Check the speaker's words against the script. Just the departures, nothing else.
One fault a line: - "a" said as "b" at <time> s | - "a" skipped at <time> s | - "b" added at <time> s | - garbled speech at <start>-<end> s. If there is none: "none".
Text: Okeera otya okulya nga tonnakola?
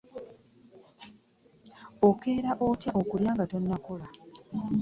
none